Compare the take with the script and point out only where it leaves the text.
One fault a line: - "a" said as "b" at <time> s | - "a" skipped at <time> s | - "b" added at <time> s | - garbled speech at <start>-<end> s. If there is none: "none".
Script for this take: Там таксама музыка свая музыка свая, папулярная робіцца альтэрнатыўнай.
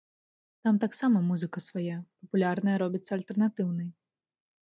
- "музыка свая" skipped at 2.0 s